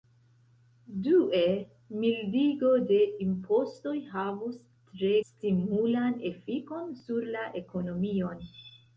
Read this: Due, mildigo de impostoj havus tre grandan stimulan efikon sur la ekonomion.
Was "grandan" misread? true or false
true